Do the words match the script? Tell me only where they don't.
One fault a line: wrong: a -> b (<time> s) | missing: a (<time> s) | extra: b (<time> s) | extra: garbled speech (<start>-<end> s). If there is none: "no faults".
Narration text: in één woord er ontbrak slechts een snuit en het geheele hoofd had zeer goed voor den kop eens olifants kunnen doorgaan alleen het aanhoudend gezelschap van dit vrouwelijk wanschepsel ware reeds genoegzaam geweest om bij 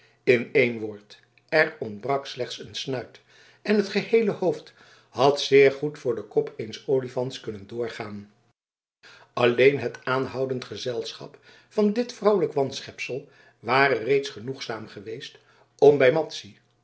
no faults